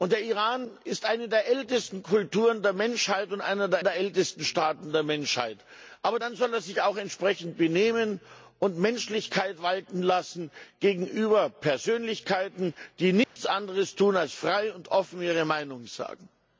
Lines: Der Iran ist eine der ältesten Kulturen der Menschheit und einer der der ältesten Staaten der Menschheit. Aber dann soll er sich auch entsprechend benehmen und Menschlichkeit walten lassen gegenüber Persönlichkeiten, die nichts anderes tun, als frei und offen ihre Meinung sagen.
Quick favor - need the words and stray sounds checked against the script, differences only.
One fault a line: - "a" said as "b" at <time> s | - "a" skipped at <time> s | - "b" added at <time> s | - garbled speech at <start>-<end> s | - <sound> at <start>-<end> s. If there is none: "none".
- dropout at 13.2-13.4 s